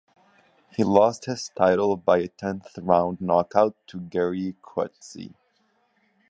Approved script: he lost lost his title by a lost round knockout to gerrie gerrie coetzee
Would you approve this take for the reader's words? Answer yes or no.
no